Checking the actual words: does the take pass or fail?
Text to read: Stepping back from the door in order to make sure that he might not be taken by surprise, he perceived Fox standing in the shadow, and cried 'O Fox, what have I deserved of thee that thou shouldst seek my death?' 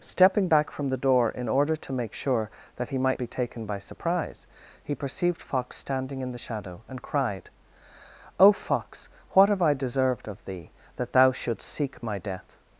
fail